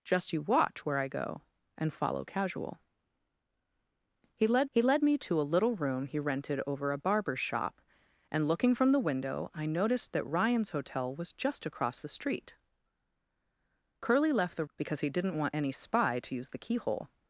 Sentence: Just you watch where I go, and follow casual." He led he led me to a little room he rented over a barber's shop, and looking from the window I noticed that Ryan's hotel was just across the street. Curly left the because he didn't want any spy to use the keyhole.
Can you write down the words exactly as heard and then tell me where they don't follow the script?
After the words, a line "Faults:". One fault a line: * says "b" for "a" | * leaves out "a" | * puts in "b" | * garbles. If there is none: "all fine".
Just you watch where I go, and follow casual." He led he led me to a little room he rented over a barber's shop, and looking from the window I noticed that Ryan's hotel was just across the street. Curly left the because he didn't want any spy to use the keyhole.
Faults:
all fine